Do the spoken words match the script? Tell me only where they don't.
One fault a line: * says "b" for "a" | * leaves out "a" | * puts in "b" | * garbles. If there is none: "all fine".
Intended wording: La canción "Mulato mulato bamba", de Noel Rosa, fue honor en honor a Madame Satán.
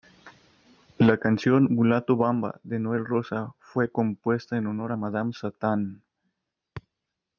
* leaves out "mulato"
* says "compuesta" for "honor"